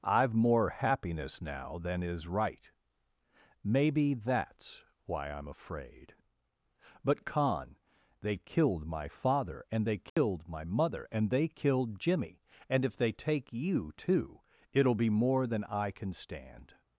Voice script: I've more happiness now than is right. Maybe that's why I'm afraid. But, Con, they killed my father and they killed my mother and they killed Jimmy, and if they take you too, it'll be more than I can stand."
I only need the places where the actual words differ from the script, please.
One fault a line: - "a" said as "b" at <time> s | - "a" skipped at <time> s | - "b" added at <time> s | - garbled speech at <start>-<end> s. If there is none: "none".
none